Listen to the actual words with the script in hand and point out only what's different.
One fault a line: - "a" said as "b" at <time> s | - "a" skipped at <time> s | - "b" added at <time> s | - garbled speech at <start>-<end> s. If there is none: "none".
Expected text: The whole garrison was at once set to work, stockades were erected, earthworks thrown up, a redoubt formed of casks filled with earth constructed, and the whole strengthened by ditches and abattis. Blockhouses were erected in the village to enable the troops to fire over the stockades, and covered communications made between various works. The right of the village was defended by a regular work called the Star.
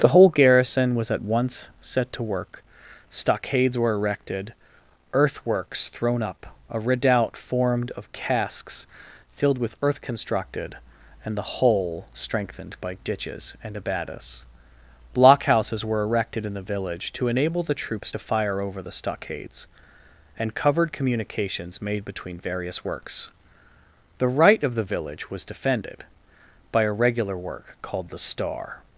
none